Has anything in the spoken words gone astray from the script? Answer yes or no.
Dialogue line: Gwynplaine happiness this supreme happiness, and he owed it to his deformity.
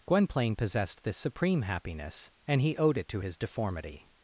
yes